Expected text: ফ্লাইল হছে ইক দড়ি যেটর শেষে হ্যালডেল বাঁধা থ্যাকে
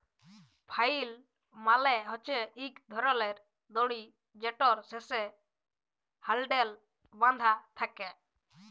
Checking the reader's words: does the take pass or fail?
fail